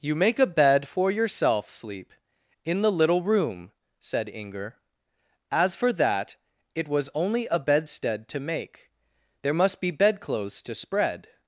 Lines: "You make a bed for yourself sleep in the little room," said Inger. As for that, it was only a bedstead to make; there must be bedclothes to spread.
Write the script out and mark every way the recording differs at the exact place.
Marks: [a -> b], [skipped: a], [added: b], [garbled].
"You make a bed for yourself sleep in the little room," said Inger. As for that, it was only a bedstead to make; there must be bedclothes to spread.